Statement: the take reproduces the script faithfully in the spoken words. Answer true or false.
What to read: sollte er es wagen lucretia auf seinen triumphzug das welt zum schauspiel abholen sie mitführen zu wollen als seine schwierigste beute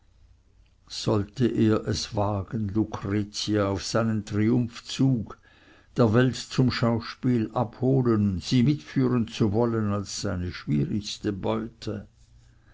false